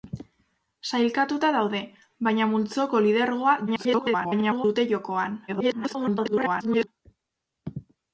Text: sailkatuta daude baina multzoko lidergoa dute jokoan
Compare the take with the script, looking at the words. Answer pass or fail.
fail